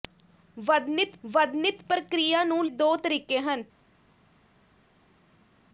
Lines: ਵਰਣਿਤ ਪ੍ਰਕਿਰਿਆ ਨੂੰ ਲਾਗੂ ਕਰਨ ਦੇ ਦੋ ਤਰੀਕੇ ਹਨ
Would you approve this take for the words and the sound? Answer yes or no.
no